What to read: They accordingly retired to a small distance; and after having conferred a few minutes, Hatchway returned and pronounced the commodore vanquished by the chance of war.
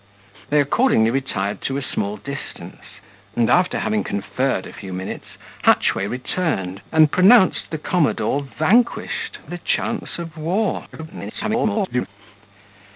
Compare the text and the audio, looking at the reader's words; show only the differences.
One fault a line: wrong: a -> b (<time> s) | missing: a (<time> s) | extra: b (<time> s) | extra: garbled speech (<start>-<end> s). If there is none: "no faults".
missing: by (9.4 s)
extra: garbled speech (10.9-12.1 s)